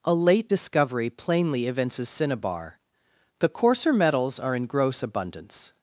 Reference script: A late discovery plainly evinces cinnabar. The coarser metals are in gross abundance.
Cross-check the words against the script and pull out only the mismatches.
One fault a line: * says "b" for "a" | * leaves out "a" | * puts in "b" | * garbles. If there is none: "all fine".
all fine